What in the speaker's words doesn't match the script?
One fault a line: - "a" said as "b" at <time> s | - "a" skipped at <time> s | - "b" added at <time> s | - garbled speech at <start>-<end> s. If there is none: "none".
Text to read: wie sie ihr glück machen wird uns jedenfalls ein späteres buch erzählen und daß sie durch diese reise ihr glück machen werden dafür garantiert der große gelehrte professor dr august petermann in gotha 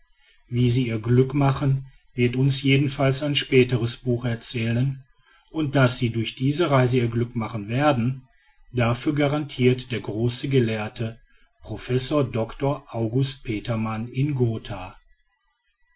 none